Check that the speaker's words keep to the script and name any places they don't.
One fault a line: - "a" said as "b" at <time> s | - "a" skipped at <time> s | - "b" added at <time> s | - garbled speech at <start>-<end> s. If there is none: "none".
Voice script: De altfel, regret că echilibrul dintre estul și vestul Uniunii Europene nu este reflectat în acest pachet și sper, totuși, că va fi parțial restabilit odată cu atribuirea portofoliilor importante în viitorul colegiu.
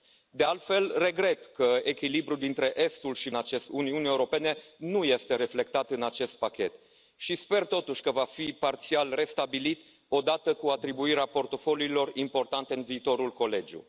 - "vestul" said as "acest" at 3.3 s